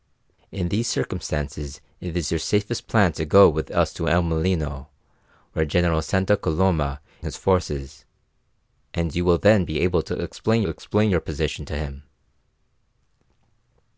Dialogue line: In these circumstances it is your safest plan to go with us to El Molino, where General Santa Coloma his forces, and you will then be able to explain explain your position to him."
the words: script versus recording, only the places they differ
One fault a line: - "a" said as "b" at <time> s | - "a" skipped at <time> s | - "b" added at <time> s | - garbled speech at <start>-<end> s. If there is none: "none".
none